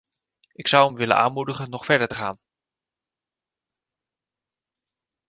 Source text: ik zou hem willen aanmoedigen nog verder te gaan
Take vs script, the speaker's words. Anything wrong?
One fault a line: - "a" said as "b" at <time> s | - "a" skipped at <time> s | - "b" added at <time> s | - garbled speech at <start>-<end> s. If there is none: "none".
none